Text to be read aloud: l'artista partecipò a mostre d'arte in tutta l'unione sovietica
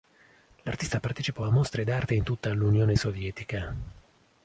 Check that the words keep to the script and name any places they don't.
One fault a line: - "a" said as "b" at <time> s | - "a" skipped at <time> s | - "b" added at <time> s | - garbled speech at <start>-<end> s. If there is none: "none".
none